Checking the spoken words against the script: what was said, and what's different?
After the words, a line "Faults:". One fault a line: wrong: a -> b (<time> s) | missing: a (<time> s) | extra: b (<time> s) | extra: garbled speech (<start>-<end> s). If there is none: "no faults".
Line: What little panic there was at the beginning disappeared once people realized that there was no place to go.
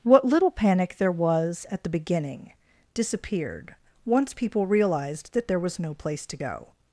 What little panic there was at the beginning disappeared once people realized that there was no place to go.
Faults:
no faults